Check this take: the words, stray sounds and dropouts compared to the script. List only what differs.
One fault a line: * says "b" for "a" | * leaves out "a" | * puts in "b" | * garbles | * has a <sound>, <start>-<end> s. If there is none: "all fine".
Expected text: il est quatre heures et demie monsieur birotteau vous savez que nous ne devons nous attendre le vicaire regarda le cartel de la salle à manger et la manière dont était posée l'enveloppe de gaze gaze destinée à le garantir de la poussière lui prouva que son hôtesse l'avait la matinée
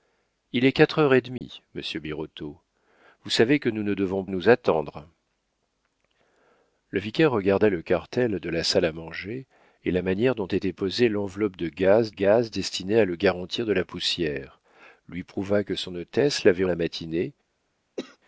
* has a dropout, 1.4-1.4 s
* has a cough, 18.0-18.2 s